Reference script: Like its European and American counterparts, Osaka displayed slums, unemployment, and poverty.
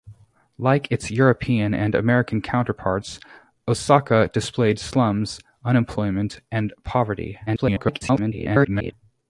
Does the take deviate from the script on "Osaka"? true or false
false